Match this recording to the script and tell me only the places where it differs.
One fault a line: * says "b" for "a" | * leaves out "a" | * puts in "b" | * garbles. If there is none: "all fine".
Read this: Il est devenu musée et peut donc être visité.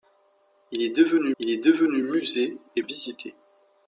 * says "il est devenu musée et" for "musée et peut donc être"